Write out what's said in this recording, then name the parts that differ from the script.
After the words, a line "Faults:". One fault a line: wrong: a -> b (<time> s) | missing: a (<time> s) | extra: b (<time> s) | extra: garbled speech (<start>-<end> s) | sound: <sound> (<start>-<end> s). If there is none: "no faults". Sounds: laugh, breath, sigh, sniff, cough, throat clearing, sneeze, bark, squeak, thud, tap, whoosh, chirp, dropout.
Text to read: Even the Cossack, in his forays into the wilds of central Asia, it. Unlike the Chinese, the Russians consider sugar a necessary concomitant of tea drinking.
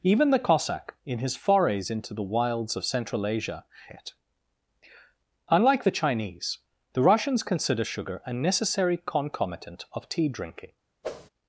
Even the Cossack, in his forays into the wilds of central Asia, it. Unlike the Chinese, the Russians consider sugar a necessary concomitant of tea drinking.
Faults:
sound: whoosh (11.0-11.3 s)